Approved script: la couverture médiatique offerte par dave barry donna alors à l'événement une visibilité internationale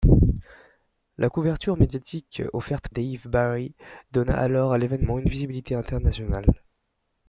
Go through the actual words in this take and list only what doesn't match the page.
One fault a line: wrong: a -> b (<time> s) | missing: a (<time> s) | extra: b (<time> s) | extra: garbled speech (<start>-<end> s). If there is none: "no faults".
missing: par (2.9 s)